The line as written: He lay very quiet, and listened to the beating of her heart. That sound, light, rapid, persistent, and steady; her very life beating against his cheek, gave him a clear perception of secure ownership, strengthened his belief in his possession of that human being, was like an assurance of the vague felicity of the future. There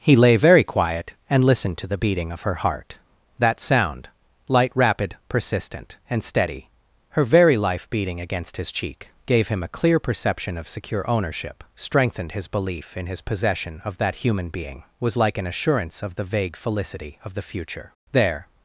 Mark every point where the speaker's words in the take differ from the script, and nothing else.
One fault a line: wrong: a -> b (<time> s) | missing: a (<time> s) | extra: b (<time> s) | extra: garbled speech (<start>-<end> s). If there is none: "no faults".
no faults